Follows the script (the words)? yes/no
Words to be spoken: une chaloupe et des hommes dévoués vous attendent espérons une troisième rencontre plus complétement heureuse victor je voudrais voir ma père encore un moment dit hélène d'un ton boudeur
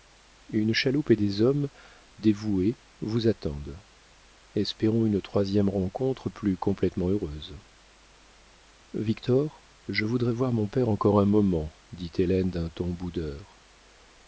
no